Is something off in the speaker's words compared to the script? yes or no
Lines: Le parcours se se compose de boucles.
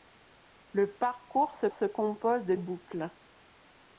no